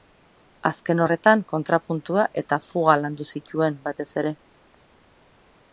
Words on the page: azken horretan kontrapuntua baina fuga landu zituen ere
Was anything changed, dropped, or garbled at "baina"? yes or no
yes